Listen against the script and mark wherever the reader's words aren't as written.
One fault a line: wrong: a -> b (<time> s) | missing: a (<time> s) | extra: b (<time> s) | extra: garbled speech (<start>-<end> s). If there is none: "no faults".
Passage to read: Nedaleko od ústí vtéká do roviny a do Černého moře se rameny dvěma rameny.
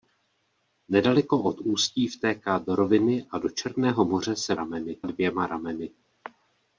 no faults